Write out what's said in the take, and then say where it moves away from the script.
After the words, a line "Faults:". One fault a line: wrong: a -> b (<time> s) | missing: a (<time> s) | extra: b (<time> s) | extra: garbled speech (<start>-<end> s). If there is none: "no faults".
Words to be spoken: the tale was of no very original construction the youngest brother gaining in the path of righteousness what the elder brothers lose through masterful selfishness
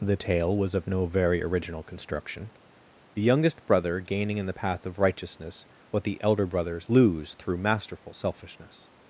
the tale was of no very original construction the youngest brother gaining in the path of righteousness what the elder brothers lose through masterful selfishness
Faults:
no faults